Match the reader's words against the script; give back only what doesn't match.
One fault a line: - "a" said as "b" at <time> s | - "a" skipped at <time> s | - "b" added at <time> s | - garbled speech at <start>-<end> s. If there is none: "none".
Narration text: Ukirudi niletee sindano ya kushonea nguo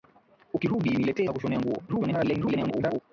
- "sindano" skipped at 1.3 s
- garbled speech at 1.9-3.0 s